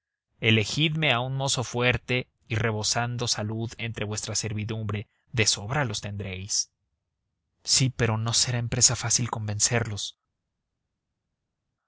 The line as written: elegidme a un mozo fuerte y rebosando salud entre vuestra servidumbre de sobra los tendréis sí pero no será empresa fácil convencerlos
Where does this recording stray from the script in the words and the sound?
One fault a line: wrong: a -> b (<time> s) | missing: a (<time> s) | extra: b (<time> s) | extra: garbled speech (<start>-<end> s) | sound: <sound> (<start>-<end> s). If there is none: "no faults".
no faults